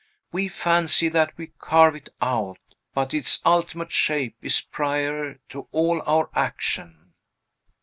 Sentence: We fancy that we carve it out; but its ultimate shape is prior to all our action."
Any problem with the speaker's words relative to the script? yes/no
no